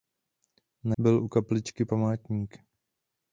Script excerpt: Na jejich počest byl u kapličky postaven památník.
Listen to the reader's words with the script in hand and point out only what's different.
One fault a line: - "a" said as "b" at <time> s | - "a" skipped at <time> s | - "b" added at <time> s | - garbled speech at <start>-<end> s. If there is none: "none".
- "jejich počest" skipped at 1.0 s
- "postaven" skipped at 1.8 s